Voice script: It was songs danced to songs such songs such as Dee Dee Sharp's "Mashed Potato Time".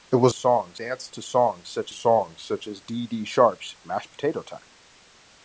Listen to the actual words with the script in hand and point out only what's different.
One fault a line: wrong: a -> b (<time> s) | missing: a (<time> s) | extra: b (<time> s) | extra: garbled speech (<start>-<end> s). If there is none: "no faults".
no faults